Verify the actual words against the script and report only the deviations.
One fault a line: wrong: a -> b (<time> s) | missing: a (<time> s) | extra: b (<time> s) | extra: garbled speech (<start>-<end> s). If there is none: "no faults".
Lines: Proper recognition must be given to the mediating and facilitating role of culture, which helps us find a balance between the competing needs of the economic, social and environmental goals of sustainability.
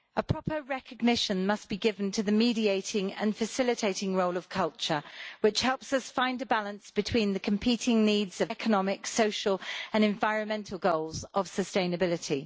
missing: the (8.5 s)